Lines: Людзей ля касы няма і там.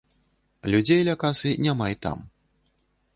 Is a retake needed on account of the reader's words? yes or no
no